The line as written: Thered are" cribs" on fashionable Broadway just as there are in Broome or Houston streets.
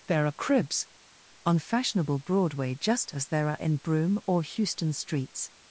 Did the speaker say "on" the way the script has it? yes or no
yes